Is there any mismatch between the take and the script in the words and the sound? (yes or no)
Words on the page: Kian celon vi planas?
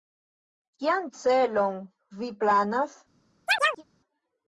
yes